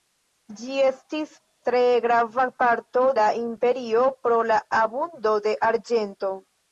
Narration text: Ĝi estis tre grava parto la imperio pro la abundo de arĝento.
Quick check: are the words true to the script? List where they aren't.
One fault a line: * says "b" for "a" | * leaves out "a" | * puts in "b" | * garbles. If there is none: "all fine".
all fine